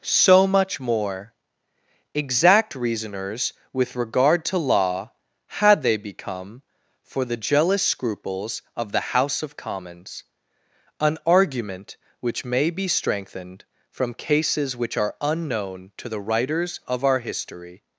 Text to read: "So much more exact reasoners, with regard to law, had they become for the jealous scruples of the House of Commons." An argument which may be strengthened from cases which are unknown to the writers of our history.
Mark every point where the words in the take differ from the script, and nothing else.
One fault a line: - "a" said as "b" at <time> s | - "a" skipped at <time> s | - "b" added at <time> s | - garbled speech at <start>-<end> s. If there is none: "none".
none